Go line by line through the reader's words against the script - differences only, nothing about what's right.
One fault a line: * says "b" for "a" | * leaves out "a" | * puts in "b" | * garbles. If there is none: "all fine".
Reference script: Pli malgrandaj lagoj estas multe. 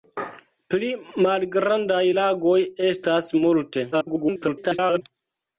* garbles